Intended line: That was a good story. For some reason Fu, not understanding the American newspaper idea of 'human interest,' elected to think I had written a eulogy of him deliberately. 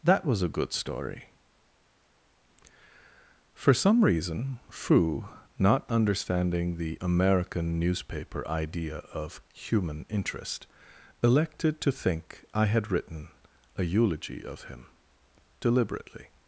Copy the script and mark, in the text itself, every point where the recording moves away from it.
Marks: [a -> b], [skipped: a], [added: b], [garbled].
That was a good story. For some reason Fu, not understanding the American newspaper idea of 'human interest,' elected to think I had written a eulogy of him deliberately.